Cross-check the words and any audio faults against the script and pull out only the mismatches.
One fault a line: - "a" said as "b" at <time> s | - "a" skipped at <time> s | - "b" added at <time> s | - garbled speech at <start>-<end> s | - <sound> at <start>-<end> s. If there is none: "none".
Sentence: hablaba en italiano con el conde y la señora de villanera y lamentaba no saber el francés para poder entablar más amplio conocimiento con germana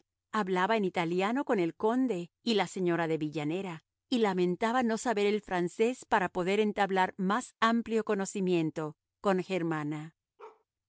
- bark at 10.4-10.6 s